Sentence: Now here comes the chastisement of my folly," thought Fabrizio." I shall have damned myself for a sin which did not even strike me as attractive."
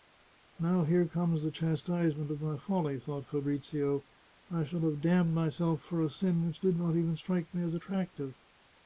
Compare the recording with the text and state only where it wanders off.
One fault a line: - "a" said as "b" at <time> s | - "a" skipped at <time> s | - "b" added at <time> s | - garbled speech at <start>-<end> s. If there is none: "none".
none